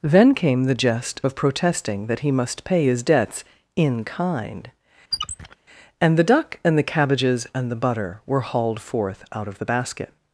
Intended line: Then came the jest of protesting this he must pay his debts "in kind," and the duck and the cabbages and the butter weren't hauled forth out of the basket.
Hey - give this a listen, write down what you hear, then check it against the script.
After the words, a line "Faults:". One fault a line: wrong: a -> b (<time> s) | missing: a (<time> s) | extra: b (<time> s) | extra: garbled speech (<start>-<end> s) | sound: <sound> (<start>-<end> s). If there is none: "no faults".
Then came the jest of protesting that he must pay his debts "in kind," and the duck and the cabbages and the butter were hauled forth out of the basket.
Faults:
wrong: this -> that (2.1 s)
sound: squeak (5.1-5.6 s)
wrong: weren't -> were (8.3 s)